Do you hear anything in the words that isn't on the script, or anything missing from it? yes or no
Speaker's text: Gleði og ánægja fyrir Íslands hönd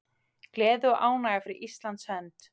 no